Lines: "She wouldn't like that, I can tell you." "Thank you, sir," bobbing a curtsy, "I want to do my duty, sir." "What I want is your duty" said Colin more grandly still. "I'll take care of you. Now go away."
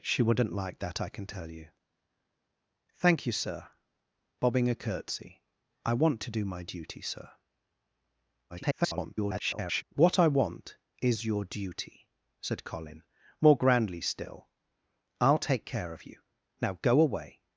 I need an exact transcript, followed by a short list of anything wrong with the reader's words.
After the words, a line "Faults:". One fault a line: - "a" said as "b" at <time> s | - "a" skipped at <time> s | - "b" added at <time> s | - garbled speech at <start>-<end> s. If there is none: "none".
"She wouldn't like that, I can tell you." "Thank you, sir," bobbing a curtsy, "I want to do my duty, sir." [garbled] "What I want is your duty" said Colin more grandly still. "I'll take care of you. Now go away."
Faults:
- garbled speech at 8.5-9.8 s